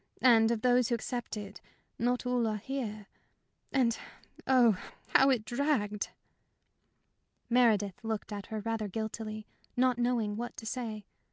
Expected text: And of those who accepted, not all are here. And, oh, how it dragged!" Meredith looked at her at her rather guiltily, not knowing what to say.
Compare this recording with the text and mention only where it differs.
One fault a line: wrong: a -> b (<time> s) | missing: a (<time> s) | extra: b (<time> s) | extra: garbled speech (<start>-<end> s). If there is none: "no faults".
missing: at her (8.6 s)